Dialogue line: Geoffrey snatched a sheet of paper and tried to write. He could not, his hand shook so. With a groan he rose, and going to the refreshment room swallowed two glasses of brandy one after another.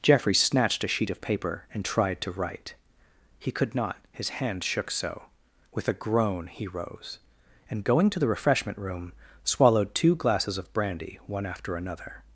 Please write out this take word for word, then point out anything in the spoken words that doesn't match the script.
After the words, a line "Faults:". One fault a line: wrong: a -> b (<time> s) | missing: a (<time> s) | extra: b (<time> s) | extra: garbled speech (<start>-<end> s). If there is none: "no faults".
Geoffrey snatched a sheet of paper and tried to write. He could not, his hand shook so. With a groan he rose, and going to the refreshment room swallowed two glasses of brandy one after another.
Faults:
no faults